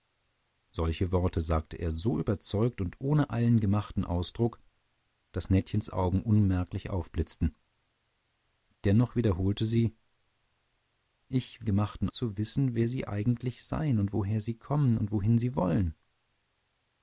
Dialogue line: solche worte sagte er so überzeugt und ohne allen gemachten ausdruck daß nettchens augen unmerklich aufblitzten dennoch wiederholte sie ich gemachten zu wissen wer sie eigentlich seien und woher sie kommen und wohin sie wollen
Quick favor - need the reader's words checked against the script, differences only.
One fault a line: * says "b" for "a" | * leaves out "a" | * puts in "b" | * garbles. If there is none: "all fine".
all fine